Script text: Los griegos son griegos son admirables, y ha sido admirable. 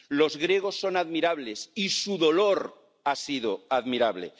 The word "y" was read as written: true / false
false